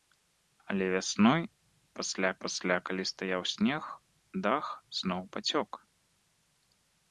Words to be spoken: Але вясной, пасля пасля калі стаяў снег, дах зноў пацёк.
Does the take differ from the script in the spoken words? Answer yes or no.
no